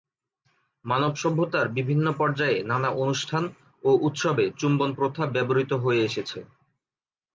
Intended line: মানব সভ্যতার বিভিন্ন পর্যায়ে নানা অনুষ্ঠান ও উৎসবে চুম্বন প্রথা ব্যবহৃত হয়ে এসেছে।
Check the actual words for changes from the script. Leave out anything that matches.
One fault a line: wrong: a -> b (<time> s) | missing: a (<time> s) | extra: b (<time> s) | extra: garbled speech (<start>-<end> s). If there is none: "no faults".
no faults